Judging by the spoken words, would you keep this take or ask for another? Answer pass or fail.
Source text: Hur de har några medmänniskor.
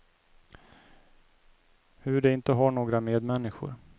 fail